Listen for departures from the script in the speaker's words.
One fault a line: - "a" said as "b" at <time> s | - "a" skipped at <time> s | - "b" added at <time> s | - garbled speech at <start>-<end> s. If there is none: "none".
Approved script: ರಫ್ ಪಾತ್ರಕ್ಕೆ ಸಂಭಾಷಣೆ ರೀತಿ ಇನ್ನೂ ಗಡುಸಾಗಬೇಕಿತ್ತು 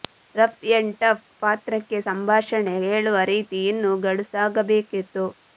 - "ಎಂಡ್ ಟಫ್" added at 0.7 s
- "ಹೇಳುವ" added at 2.9 s